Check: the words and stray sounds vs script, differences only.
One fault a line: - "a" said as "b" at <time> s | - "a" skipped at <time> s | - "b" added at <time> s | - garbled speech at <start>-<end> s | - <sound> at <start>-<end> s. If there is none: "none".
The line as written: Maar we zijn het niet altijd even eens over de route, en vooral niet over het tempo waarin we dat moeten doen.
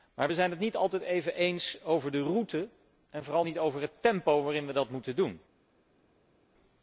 none